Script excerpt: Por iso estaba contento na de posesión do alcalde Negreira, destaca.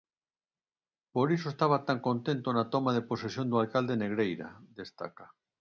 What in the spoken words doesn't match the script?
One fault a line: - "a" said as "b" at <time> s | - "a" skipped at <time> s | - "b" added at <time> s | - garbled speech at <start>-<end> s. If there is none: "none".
- "tan" added at 1.9 s
- "toma" added at 2.7 s